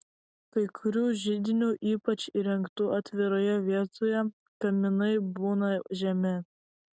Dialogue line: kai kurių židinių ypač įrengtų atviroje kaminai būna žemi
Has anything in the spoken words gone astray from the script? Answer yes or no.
yes